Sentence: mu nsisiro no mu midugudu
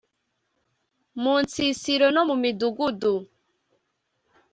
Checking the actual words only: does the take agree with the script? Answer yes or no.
yes